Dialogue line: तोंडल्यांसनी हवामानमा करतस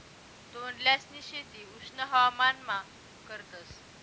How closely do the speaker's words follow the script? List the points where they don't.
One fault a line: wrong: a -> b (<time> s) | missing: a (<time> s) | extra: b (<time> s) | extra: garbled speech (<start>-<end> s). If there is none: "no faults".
extra: शेती उष्ण (1.2 s)